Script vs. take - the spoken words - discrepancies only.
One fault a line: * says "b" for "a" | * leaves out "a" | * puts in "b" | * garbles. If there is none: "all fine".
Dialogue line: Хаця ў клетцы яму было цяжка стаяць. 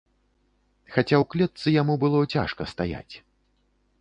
all fine